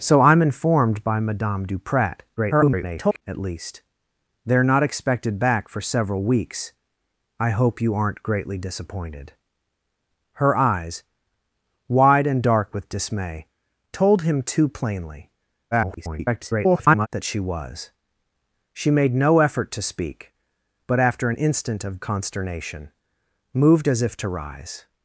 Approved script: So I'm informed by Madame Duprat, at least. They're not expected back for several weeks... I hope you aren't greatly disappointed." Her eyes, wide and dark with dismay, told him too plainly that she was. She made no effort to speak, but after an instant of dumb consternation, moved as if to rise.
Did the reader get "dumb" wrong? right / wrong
wrong